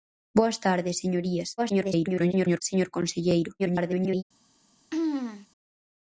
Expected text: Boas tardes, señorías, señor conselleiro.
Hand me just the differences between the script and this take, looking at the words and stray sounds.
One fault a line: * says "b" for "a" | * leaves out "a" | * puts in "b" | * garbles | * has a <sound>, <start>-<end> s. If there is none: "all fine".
* garbles
* garbles
* has a throat clearing, 4.9-5.5 s